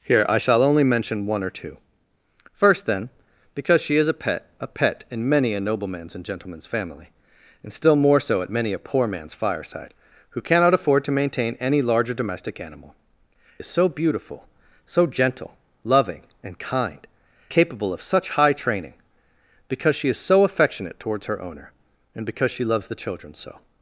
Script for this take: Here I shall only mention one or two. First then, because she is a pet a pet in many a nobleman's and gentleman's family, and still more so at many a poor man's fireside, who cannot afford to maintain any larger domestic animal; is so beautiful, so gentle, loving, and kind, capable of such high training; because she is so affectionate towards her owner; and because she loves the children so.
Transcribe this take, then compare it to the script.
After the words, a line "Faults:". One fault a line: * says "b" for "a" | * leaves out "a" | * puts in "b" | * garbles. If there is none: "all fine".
Here I shall only mention one or two. First then, because she is a pet a pet in many a nobleman's and gentleman's family, and still more so at many a poor man's fireside, who cannot afford to maintain any larger domestic animal; is so beautiful, so gentle, loving, and kind, capable of such high training; because she is so affectionate towards her owner; and because she loves the children so.
Faults:
all fine